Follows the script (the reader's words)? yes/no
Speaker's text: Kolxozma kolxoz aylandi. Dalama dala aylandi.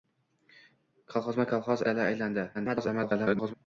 no